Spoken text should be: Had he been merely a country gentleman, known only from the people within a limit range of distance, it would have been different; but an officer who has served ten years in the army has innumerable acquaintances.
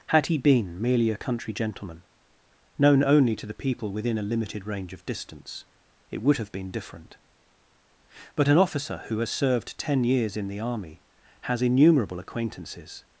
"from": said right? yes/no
no